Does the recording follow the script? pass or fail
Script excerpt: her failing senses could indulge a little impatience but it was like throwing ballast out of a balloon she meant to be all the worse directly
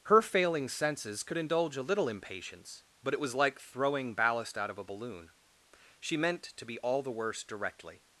pass